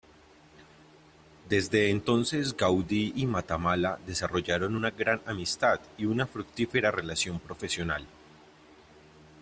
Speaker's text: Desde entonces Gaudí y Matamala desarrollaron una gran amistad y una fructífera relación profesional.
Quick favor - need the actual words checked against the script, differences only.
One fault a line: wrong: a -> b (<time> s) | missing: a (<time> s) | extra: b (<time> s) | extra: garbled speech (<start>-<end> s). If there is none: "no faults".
no faults